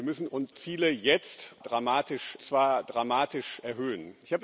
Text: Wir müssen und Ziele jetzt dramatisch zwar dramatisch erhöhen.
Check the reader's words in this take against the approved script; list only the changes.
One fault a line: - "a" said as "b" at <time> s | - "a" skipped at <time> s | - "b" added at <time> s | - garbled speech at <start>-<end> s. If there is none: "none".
none